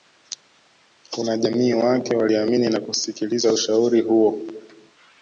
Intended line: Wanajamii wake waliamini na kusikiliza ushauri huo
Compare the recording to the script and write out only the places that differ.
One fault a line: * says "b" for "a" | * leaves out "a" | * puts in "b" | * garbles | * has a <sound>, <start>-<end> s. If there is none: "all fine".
all fine